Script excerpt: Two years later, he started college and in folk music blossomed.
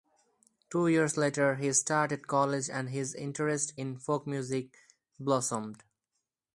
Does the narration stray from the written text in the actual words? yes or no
yes